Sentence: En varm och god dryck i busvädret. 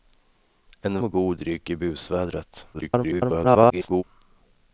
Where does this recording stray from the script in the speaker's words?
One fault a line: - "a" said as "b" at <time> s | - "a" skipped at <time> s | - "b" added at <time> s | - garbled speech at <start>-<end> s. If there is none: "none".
- "varm" skipped at 1.0 s
- garbled speech at 2.7-4.0 s